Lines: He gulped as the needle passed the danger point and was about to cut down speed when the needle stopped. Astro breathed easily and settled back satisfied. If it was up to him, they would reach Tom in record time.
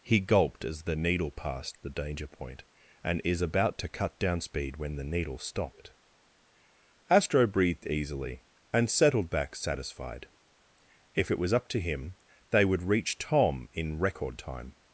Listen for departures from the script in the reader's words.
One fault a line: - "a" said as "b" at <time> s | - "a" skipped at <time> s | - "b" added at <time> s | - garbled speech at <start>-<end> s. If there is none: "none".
- "was" said as "is" at 3.2 s